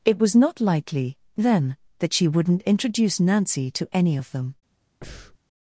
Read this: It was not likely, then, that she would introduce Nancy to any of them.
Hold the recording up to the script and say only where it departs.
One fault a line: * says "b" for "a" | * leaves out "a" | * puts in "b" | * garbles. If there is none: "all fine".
* says "wouldn't" for "would"